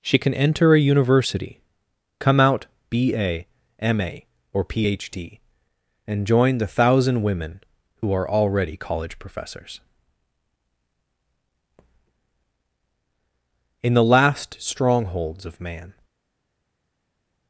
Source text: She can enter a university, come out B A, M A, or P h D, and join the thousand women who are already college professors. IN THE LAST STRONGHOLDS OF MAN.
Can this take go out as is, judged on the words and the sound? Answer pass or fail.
pass